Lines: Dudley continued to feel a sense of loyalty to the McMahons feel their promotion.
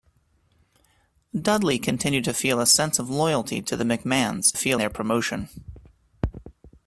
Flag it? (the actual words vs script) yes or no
no